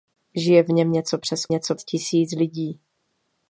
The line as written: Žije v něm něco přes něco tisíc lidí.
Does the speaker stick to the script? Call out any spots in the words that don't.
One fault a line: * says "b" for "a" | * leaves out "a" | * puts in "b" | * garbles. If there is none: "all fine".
all fine